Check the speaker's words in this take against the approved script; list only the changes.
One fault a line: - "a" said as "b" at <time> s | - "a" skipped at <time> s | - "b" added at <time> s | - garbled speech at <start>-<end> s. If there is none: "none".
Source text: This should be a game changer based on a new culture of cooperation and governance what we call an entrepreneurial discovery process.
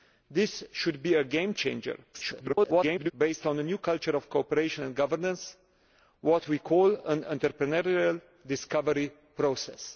- garbled speech at 2.1-3.1 s